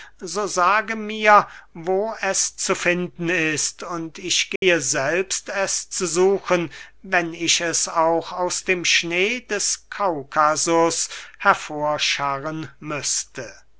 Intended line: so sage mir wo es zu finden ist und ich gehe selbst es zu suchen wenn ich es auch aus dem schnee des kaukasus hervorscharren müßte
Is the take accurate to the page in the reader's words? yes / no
yes